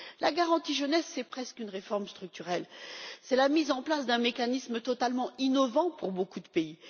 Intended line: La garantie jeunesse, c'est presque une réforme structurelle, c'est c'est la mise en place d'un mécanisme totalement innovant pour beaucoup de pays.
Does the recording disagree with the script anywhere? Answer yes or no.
yes